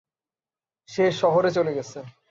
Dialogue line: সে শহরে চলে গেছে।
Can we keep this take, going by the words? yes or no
yes